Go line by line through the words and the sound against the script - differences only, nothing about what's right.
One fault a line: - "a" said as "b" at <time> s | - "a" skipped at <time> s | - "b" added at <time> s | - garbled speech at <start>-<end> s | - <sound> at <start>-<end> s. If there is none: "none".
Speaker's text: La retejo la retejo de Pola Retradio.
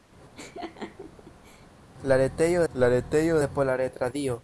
- laugh at 0.4-1.7 s